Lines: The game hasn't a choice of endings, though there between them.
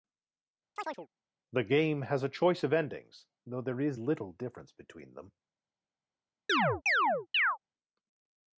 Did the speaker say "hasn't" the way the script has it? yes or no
no